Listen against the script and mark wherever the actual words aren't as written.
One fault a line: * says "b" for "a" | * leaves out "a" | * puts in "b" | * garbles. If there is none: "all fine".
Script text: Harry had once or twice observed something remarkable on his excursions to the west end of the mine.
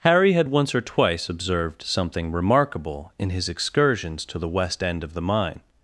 * says "in" for "on"